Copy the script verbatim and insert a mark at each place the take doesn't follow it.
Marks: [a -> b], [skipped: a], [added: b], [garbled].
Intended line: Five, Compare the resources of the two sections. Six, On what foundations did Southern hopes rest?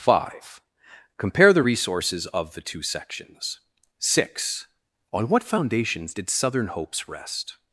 Five, Compare the resources of the two sections. Six, On what foundations did Southern hopes rest?